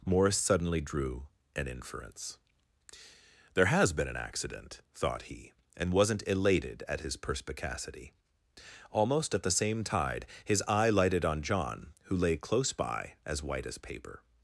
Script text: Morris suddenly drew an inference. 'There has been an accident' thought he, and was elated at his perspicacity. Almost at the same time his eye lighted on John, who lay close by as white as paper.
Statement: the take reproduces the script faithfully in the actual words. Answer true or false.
false